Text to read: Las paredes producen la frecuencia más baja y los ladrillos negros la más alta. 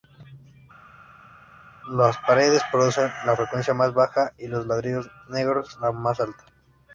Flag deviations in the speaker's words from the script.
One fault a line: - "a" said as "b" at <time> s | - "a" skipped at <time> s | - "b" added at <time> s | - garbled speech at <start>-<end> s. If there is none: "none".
none